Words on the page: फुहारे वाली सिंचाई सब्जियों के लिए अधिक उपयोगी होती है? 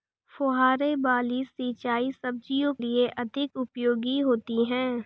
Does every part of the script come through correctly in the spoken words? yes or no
no